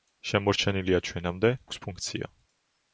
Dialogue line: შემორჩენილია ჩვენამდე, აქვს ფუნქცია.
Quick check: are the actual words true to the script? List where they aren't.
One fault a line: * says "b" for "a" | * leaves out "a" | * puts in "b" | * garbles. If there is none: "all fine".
all fine